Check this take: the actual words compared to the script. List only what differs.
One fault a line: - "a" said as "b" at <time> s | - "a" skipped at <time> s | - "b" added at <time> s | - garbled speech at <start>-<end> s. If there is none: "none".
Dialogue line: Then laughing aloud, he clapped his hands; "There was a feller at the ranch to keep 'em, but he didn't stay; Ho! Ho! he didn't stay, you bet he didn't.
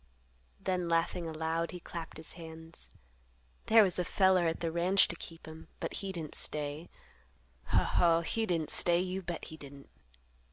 none